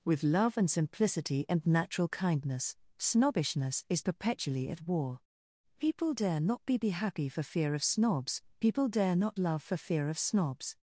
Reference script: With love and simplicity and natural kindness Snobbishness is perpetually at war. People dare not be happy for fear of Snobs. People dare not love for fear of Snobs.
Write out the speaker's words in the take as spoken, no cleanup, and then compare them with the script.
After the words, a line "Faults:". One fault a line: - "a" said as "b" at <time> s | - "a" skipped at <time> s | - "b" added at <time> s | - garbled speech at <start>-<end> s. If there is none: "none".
With love and simplicity and natural kindness Snobbishness is perpetually at war. People dare not be be happy for fear of Snobs. People dare not love for fear of Snobs.
Faults:
- "be" added at 6.8 s